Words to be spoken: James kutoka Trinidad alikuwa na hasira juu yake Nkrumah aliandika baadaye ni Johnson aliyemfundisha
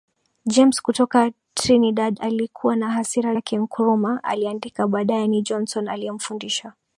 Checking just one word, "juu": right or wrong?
wrong